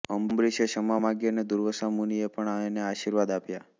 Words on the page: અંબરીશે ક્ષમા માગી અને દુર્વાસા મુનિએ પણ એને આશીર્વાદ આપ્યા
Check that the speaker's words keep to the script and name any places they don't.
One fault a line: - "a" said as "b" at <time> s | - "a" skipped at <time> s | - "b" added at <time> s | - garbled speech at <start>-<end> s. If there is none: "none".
none